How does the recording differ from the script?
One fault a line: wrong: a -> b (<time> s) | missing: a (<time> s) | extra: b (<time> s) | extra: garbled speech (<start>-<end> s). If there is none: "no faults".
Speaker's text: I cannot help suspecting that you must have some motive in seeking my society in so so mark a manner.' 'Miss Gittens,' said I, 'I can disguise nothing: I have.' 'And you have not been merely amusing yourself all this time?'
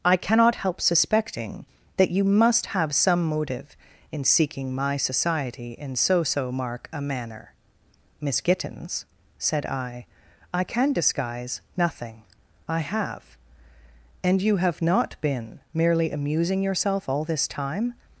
no faults